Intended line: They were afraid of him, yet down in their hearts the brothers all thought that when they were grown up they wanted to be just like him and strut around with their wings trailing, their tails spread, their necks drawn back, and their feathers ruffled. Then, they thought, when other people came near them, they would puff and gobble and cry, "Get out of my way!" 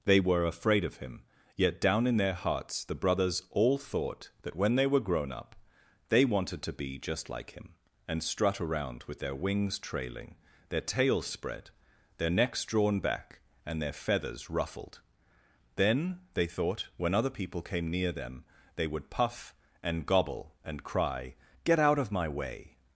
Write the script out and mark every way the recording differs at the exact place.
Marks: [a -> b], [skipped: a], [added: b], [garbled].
They were afraid of him, yet down in their hearts the brothers all thought that when they were grown up they wanted to be just like him and strut around with their wings trailing, their tails spread, their necks drawn back, and their feathers ruffled. Then, they thought, when other people came near them, they would puff and gobble and cry, "Get out of my way!"